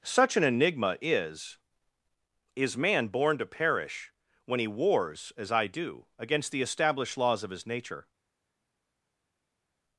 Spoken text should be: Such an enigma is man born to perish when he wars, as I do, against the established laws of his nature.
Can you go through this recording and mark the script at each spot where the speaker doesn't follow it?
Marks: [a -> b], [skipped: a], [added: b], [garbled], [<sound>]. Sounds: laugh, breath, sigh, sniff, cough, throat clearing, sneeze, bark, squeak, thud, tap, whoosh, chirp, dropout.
Such an enigma is [added: is] man born to perish when he wars, as I do, against the established laws of his nature.